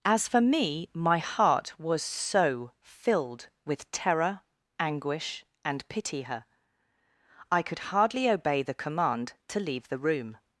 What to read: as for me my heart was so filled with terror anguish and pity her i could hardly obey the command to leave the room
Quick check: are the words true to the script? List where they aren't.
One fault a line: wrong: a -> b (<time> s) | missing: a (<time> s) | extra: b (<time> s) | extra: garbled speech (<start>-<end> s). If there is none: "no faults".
no faults